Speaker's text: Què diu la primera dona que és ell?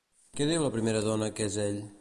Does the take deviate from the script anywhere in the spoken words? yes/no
no